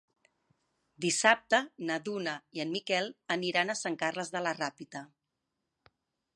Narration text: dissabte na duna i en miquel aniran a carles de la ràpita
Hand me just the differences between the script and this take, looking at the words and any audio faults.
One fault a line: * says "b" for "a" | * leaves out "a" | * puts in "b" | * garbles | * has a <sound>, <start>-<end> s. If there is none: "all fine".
* puts in "sant"